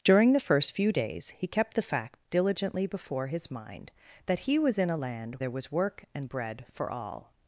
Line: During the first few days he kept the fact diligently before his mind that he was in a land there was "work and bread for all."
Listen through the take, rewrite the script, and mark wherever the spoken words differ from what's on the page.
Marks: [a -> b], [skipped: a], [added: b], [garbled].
During the first few days he kept the fact diligently before his mind that he was in a land there was "work and bread for all."